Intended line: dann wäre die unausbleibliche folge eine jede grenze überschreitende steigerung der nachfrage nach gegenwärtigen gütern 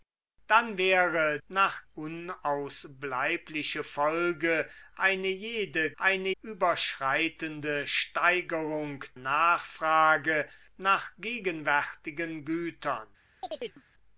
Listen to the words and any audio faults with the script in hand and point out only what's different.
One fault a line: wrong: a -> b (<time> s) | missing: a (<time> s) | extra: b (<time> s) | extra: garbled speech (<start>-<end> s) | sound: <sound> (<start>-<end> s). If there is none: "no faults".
wrong: die -> nach (1.5 s)
wrong: grenze -> eine (6.0 s)
missing: der (9.0 s)
sound: chirp (13.4-13.8 s)